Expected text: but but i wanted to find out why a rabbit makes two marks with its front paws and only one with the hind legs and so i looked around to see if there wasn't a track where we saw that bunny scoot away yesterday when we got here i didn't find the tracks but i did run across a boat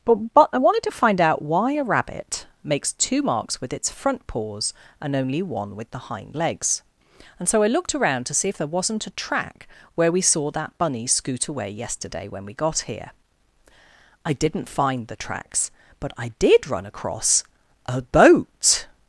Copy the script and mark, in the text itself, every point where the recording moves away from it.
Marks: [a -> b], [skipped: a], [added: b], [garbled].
but but i wanted to find out why a rabbit makes two marks with its front paws and only one with the hind legs and so i looked around to see if there wasn't a track where we saw that bunny scoot away yesterday when we got here i didn't find the tracks but i did run across a boat